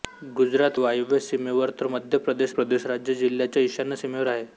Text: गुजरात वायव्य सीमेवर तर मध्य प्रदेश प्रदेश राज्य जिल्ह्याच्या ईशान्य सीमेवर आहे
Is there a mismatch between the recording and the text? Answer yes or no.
no